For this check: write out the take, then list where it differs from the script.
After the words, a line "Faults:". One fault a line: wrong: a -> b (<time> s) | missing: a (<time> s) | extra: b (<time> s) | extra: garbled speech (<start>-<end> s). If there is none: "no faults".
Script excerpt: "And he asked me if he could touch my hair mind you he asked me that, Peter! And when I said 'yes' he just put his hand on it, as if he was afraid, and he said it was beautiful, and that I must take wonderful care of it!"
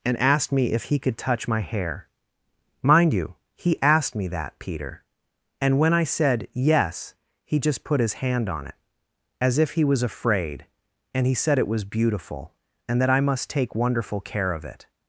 "And asked me if he could touch my hair mind you he asked me that, Peter! And when I said 'yes' he just put his hand on it, as if he was afraid, and he said it was beautiful, and that I must take wonderful care of it!"
Faults:
missing: he (0.2 s)